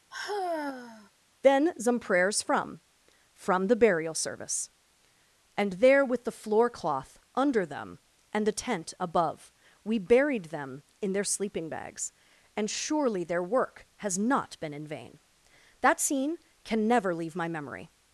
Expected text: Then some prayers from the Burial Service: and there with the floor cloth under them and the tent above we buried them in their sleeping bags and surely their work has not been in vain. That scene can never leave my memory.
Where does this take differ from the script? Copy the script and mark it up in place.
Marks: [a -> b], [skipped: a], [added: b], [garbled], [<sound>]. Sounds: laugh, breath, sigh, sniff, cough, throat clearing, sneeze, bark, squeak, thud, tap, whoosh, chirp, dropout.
[sigh] Then some prayers from [added: from] the Burial Service: and there with the floor cloth under them and the tent above we buried them in their sleeping bags and surely their work has not been in vain. That scene can never leave my memory.